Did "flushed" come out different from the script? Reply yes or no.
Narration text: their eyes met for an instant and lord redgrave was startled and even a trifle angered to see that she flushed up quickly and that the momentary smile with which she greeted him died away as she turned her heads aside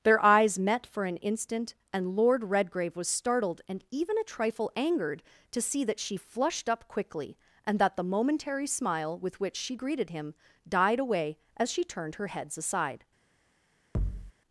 no